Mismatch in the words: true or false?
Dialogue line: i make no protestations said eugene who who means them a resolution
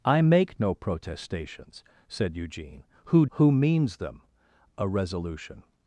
false